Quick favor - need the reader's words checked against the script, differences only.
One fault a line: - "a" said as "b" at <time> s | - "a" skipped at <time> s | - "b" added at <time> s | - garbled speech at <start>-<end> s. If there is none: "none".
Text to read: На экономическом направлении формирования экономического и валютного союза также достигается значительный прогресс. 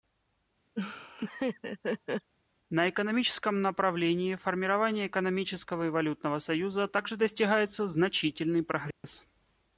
none